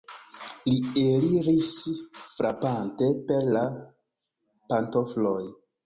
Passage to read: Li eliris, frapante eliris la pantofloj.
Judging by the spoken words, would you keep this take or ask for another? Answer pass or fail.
fail